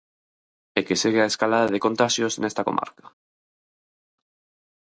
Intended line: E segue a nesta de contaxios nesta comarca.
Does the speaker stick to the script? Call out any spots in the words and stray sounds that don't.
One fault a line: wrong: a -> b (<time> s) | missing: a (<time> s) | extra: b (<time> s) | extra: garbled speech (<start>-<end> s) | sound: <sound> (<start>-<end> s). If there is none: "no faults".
extra: que (0.9 s)
wrong: nesta -> escalada (1.3 s)